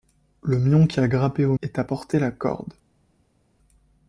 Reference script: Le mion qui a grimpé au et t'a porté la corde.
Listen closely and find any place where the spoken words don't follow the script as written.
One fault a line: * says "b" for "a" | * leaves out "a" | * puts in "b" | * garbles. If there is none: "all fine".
all fine